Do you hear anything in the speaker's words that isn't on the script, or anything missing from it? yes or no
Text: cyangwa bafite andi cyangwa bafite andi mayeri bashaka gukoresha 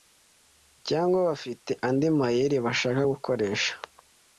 yes